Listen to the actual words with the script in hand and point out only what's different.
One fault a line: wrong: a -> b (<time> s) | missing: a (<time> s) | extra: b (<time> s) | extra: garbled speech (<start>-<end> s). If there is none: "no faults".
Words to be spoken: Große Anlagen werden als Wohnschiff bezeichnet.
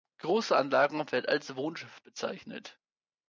no faults